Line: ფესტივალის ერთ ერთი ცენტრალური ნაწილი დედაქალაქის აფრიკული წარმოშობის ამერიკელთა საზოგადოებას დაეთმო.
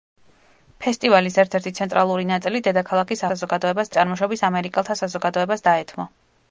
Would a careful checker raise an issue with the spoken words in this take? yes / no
yes